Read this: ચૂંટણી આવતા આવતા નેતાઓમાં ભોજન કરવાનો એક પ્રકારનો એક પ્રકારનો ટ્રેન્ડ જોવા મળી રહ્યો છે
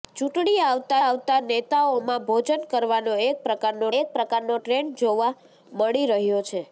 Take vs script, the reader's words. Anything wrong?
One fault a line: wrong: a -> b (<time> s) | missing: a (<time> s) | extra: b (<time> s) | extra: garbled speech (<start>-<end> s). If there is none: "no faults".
no faults